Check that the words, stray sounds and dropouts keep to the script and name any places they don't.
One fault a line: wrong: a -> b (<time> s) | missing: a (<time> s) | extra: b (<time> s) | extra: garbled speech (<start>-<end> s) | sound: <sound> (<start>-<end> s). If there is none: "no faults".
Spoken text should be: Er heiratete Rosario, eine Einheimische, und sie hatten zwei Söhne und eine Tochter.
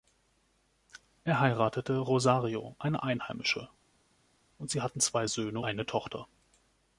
missing: und (5.6 s)